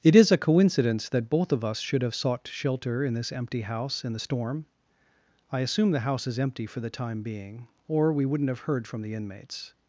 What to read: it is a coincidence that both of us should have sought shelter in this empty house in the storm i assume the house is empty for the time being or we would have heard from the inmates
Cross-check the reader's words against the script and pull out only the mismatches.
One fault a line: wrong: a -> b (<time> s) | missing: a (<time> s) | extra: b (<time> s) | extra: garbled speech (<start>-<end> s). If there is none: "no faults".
wrong: would -> wouldn't (8.2 s)